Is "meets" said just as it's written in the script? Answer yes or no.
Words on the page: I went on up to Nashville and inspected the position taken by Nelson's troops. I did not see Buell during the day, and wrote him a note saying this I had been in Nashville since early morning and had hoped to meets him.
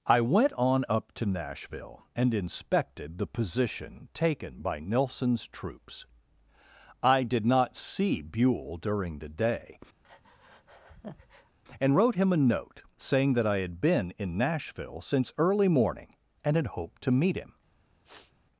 no